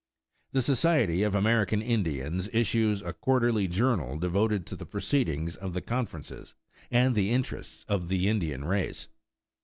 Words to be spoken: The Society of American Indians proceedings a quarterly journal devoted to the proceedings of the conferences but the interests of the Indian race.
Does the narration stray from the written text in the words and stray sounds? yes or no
yes